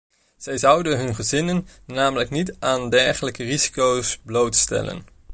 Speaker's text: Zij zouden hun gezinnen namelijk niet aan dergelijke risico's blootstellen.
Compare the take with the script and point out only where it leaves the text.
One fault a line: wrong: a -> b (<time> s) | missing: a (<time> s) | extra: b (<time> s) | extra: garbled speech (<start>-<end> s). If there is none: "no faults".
no faults